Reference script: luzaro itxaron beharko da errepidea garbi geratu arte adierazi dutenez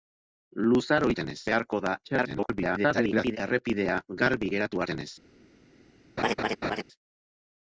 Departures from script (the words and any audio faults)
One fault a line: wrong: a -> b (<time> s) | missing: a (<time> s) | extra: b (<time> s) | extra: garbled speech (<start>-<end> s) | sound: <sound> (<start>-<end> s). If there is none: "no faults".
wrong: itxaron -> dutenez (1.1 s)
extra: garbled speech (2.0-3.4 s)
missing: arte adierazi (4.9 s)
sound: laugh (6.2-6.8 s)